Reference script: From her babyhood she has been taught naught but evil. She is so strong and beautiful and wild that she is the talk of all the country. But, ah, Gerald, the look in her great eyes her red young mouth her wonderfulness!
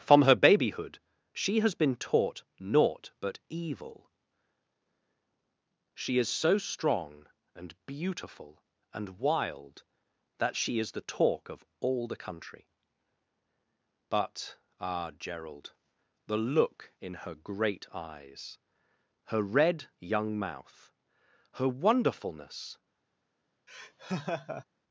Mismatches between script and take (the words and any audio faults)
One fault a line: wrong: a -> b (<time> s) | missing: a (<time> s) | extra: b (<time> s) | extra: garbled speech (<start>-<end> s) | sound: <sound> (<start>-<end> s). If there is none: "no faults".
sound: laugh (23.7-24.6 s)